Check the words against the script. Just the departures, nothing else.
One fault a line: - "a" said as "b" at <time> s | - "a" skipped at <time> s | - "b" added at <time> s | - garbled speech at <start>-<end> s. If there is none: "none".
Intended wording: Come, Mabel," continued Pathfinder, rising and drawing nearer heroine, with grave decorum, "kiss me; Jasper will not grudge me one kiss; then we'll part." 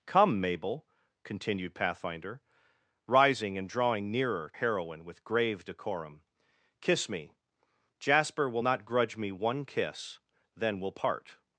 none